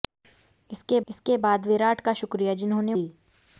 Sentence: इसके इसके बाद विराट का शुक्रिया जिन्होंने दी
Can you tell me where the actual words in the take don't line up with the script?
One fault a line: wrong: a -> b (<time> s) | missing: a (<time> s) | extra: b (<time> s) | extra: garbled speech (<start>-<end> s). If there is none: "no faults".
no faults